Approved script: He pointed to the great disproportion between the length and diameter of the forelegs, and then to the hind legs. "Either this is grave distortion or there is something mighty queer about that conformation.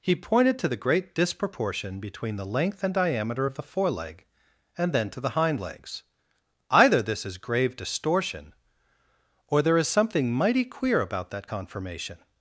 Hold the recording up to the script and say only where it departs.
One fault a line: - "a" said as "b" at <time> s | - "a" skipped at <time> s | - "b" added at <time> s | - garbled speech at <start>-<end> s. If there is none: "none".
- "forelegs" said as "foreleg" at 3.6 s